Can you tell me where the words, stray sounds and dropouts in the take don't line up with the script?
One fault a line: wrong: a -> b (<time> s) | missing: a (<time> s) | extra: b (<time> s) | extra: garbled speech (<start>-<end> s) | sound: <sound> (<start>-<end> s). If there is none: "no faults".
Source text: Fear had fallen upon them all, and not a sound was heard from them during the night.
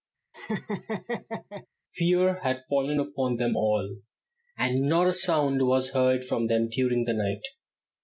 sound: laugh (0.3-1.7 s)